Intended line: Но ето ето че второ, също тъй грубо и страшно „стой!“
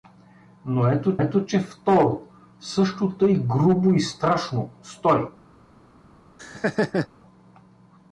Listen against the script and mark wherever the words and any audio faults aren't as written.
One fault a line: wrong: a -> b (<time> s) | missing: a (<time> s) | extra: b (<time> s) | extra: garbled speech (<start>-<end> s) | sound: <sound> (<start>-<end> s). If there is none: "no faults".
sound: laugh (6.4-7.1 s)